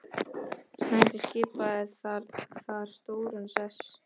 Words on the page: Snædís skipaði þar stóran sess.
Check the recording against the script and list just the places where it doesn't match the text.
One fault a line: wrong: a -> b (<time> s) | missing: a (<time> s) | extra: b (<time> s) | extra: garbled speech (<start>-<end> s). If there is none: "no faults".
no faults